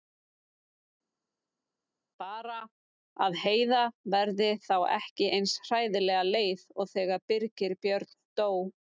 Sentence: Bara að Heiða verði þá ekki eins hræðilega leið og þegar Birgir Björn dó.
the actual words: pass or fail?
pass